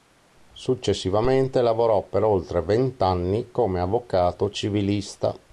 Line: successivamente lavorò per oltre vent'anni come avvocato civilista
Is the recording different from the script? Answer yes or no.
no